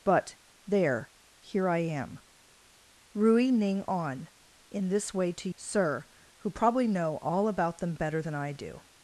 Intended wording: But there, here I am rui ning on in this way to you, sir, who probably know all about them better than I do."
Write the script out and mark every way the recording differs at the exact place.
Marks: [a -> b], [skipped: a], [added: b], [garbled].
But there, here I am rui ning on in this way to [skipped: you,] sir, who probably know all about them better than I do."